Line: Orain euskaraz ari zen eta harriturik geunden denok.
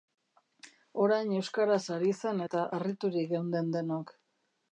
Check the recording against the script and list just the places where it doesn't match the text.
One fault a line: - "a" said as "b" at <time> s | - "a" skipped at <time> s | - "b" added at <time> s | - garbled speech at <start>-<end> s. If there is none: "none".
none